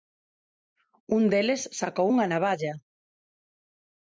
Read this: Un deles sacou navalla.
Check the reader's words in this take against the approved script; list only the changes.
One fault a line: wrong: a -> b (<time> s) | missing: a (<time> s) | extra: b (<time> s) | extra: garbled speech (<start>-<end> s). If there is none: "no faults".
extra: unha (2.1 s)